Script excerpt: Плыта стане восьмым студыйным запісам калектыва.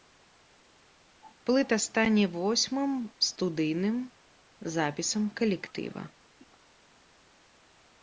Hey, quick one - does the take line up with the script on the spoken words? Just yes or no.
yes